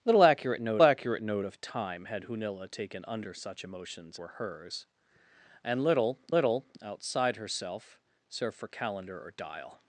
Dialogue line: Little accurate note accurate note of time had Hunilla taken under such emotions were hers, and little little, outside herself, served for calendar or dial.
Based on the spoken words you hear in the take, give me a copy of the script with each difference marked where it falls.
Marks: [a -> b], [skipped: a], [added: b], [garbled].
Little accurate note accurate note of time had Hunilla taken under such emotions were hers, and little little, outside herself, served for calendar or dial.